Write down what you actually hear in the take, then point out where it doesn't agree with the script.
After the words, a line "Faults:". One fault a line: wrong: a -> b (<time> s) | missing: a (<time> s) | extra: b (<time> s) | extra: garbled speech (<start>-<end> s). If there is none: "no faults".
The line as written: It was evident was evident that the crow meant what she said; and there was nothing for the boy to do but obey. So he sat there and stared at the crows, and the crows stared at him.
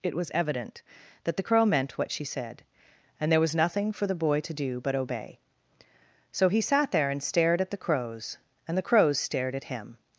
It was evident that the crow meant what she said; and there was nothing for the boy to do but obey. So he sat there and stared at the crows, and the crows stared at him.
Faults:
missing: was evident (0.8 s)